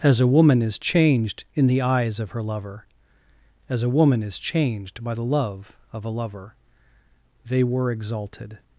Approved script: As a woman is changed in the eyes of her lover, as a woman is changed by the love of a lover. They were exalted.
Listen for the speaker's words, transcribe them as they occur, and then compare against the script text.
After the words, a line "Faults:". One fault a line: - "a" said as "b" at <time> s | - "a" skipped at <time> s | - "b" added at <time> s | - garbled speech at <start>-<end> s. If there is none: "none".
As a woman is changed in the eyes of her lover, as a woman is changed by the love of a lover. They were exalted.
Faults:
none